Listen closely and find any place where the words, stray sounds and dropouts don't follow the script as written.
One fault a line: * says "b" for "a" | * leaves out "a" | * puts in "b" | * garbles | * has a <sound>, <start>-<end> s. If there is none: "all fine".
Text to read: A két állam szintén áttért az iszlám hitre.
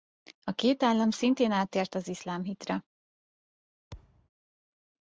* has a thud, 3.9-4.3 s